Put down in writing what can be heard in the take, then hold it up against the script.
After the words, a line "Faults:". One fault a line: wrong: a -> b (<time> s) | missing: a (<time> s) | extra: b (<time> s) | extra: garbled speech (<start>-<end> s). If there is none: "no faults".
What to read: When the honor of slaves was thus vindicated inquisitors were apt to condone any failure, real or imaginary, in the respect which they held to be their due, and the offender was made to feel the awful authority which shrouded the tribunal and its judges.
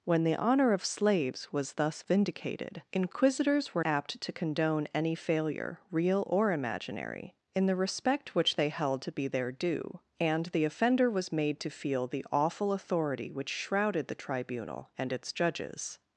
When the honor of slaves was thus vindicated inquisitors were apt to condone any failure, real or imaginary, in the respect which they held to be their due, and the offender was made to feel the awful authority which shrouded the tribunal and its judges.
Faults:
no faults